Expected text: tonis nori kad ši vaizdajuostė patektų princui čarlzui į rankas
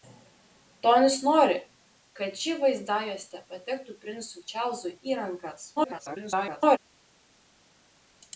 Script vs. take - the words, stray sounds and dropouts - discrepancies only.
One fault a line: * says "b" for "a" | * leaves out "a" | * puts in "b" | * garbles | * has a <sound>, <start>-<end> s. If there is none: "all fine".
* garbles